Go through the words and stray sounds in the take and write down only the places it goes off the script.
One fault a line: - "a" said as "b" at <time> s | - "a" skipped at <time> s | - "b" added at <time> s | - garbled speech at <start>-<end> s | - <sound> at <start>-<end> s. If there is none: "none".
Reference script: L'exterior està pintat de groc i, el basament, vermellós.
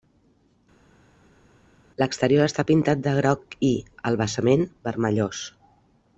none